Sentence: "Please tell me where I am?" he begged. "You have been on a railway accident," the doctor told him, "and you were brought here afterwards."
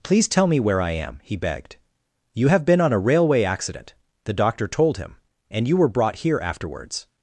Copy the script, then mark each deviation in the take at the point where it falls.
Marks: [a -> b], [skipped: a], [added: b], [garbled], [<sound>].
"Please tell me where I am?" he begged. "You have been on a railway accident," the doctor told him, "and you were brought here afterwards."